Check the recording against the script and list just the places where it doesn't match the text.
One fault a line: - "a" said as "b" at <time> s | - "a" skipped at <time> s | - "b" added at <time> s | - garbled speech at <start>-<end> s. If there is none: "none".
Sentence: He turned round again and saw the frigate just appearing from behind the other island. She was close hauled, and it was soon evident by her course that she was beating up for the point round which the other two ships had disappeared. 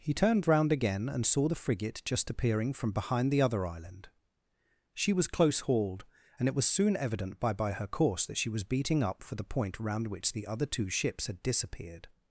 - "by" added at 7.5 s